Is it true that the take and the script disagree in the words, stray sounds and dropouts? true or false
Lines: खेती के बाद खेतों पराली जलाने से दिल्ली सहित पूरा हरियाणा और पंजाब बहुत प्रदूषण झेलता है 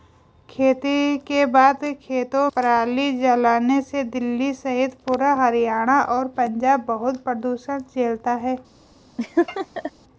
true